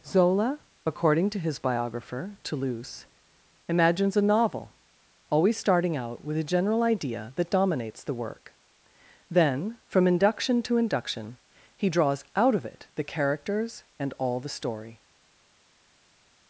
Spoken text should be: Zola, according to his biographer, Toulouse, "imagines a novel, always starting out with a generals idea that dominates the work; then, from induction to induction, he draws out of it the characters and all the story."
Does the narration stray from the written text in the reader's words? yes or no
yes